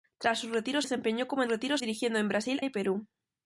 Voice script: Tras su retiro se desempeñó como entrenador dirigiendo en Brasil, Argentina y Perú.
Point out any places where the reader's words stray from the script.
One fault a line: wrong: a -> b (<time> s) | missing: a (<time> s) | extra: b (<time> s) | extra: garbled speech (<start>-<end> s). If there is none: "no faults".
missing: se (0.8 s)
wrong: entrenador -> retiro (1.5 s)
missing: Argentina (2.6 s)